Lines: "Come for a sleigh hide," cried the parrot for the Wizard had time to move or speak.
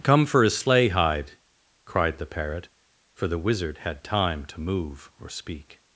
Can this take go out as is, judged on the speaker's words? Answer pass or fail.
pass